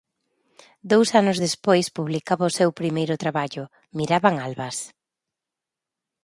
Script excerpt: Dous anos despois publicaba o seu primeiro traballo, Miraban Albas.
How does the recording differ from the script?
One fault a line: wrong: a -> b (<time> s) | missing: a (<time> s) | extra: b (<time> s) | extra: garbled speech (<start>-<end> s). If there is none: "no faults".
no faults